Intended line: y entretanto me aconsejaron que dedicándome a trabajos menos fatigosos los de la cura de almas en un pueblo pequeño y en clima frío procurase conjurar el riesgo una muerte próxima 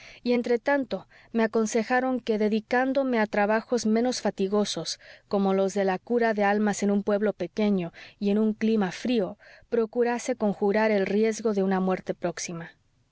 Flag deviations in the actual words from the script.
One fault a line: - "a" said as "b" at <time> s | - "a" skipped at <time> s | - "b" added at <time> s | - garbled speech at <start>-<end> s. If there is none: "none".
- "como" added at 5.3 s
- "un" added at 8.4 s
- "de" added at 11.5 s